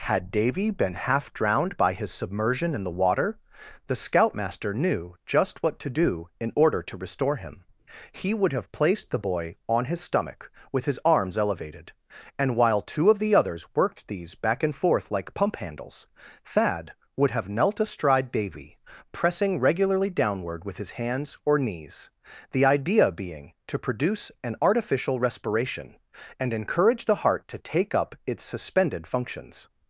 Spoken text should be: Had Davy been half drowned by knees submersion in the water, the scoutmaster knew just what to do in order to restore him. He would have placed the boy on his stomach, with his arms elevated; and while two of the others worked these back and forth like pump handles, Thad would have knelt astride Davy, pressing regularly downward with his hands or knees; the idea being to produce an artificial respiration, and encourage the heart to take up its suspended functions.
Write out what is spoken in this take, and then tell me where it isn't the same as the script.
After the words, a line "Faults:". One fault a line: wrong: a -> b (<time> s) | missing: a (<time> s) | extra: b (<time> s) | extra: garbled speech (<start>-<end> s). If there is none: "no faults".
Had Davy been half drowned by his submersion in the water, the scoutmaster knew just what to do in order to restore him. He would have placed the boy on his stomach, with his arms elevated; and while two of the others worked these back and forth like pump handles, Thad would have knelt astride Davy, pressing regularly downward with his hands or knees; the idea being to produce an artificial respiration, and encourage the heart to take up its suspended functions.
Faults:
wrong: knees -> his (1.9 s)